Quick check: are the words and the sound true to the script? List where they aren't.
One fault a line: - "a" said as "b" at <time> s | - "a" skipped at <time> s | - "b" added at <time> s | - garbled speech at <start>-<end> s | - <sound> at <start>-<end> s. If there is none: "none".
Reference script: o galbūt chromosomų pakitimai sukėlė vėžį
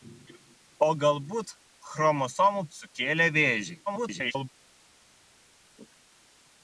- "pakitimai" skipped at 2.6 s
- garbled speech at 3.9-4.5 s